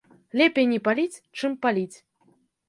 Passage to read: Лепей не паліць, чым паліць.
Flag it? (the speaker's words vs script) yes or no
no